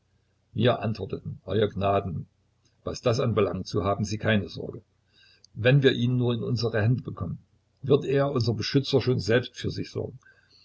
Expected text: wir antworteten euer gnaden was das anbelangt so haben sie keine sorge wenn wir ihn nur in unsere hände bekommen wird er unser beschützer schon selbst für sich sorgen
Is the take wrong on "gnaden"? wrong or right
right